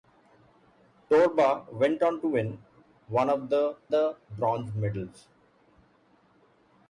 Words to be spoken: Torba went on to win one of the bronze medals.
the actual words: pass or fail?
fail